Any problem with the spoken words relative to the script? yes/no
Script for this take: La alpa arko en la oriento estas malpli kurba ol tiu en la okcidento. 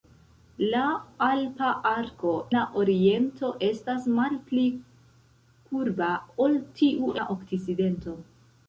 yes